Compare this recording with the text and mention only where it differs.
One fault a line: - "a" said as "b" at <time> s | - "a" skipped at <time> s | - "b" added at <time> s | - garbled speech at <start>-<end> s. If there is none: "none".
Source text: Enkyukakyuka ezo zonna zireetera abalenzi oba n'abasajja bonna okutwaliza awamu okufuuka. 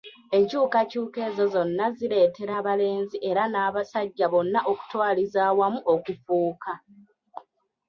- "oba" said as "era" at 3.3 s